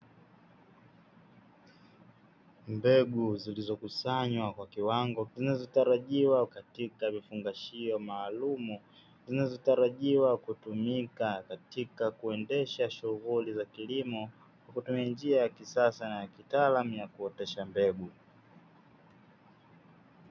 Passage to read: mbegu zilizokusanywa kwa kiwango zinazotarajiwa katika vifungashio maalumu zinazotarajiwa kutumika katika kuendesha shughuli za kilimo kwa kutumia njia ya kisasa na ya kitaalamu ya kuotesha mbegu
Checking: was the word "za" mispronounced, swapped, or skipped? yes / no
no